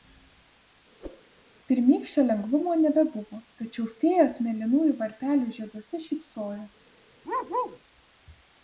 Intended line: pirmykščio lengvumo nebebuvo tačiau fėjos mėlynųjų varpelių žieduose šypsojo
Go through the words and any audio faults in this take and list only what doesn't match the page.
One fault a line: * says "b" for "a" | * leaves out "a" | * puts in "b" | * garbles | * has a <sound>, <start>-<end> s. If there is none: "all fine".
* has a whoosh, 1.0-1.3 s
* has a bark, 7.2-7.8 s